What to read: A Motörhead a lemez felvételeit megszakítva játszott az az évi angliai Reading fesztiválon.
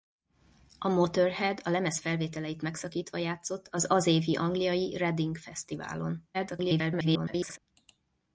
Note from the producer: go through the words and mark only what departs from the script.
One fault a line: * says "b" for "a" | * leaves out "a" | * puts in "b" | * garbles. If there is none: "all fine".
* garbles